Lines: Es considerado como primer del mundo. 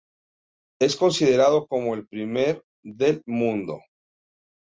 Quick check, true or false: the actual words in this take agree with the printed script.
false